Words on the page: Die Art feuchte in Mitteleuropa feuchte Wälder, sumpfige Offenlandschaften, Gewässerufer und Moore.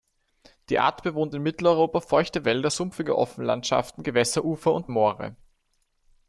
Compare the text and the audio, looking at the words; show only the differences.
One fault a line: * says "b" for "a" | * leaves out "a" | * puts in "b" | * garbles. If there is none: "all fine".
* says "bewohnt" for "feuchte"